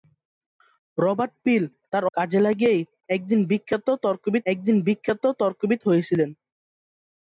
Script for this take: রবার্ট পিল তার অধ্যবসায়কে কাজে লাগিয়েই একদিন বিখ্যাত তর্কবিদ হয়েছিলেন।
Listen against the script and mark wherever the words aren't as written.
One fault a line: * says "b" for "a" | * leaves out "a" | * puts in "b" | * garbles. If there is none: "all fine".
* leaves out "অধ্যবসায়কে"
* puts in "একদিন বিখ্যাত তর্কবিদ"